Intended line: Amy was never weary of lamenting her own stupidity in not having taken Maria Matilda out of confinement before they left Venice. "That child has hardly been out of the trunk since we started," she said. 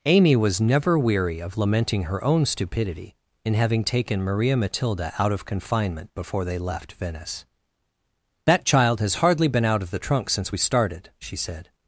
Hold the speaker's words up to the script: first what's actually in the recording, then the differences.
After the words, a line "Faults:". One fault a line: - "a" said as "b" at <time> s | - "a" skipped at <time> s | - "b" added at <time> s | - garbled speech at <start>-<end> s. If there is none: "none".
Amy was never weary of lamenting her own stupidity in having taken Maria Matilda out of confinement before they left Venice. "That child has hardly been out of the trunk since we started," she said.
Faults:
- "not" skipped at 3.5 s